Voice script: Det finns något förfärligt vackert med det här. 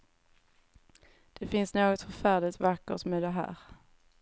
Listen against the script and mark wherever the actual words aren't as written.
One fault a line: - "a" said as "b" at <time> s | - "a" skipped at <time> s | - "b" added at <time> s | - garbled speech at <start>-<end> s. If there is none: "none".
none